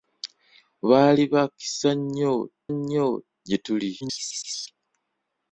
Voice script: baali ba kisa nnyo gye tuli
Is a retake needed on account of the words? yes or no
yes